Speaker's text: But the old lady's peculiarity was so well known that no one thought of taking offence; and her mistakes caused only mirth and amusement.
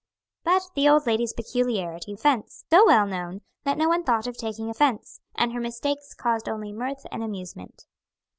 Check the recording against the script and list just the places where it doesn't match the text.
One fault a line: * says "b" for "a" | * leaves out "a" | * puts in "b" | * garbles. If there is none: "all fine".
* says "offence" for "was"